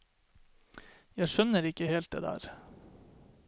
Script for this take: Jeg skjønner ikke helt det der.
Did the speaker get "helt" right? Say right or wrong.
right